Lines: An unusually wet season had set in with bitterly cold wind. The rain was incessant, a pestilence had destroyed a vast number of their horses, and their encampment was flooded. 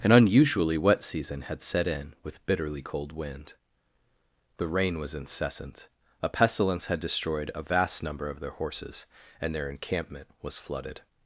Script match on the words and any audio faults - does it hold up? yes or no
yes